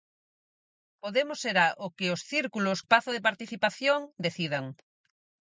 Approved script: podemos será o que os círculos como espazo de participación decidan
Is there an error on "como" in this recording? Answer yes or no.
yes